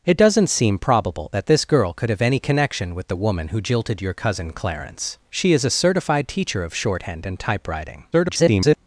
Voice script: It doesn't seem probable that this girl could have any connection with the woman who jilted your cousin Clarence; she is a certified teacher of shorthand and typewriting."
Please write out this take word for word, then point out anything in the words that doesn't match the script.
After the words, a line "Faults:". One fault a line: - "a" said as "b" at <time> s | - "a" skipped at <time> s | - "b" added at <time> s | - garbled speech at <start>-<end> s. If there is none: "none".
It doesn't seem probable that this girl could have any connection with the woman who jilted your cousin Clarence; she is a certified teacher of shorthand and typewriting." [garbled]
Faults:
- garbled speech at 8.1-8.8 s